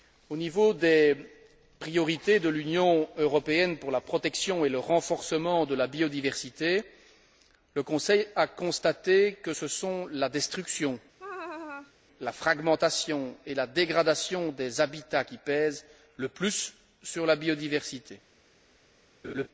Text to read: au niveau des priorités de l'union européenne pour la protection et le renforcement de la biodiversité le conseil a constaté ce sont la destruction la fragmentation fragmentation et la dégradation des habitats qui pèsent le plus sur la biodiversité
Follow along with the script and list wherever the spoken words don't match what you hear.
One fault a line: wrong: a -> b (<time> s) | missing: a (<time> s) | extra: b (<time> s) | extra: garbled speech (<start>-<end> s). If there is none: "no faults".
extra: que (9.3 s)
missing: fragmentation (13.4 s)